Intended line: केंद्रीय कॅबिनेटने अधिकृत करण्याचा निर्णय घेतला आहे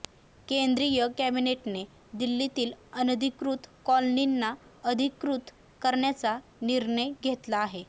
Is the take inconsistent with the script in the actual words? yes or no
yes